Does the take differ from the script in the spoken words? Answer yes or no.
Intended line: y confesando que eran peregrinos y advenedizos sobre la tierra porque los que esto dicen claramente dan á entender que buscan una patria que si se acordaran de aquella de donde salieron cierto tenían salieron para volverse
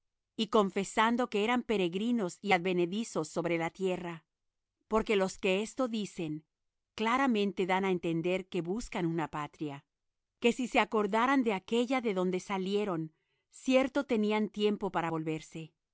yes